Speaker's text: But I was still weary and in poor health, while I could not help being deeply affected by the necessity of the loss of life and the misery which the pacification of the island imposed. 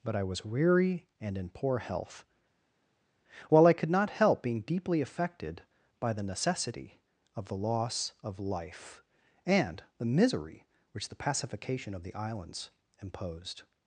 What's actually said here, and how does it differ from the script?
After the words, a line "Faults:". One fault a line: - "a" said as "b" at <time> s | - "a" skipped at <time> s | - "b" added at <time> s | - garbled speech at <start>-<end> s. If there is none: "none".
But I was weary and in poor health, while I could not help being deeply affected by the necessity of the loss of life and the misery which the pacification of the islands imposed.
Faults:
- "still" skipped at 0.5 s
- "island" said as "islands" at 12.1 s